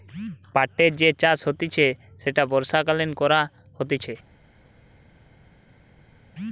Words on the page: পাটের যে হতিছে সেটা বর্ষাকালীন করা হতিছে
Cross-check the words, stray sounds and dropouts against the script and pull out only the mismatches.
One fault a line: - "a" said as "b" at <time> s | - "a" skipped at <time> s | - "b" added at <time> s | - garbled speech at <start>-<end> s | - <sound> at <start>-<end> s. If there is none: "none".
- "চাষ" added at 1.2 s